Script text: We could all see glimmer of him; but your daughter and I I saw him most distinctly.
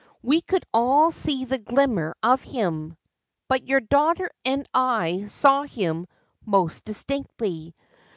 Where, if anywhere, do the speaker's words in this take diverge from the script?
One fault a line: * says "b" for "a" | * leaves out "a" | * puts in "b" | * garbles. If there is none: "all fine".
* puts in "the"
* leaves out "I"